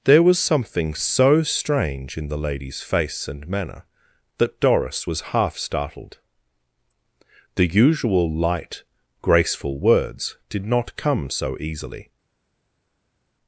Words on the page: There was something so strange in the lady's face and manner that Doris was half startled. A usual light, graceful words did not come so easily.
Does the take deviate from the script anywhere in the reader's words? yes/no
yes